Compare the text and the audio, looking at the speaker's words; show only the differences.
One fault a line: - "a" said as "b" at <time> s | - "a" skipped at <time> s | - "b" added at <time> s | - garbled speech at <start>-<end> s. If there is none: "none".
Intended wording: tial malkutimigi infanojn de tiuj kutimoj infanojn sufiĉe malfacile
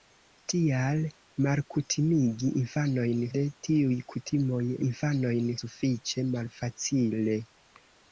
none